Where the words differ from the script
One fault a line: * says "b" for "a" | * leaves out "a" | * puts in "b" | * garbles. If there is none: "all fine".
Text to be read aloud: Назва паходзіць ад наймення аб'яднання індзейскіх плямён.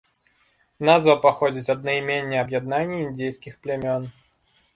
all fine